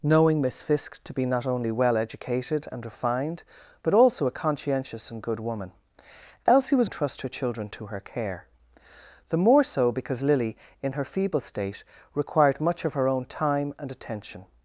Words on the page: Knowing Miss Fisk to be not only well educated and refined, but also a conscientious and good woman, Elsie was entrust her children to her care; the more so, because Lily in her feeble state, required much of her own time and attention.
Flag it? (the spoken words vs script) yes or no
no